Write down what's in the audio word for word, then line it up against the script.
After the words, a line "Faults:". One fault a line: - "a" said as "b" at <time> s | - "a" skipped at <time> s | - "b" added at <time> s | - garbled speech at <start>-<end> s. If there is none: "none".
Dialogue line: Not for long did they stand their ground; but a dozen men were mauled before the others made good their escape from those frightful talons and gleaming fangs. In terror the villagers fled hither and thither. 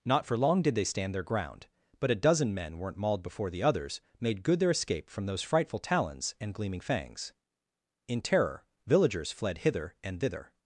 Not for long did they stand their ground; but a dozen men weren't mauled before the others made good their escape from those frightful talons and gleaming fangs. In terror villagers fled hither and thither.
Faults:
- "were" said as "weren't" at 2.8 s
- "the" skipped at 8.7 s